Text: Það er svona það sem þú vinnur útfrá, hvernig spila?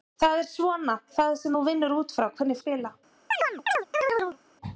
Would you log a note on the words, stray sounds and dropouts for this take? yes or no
yes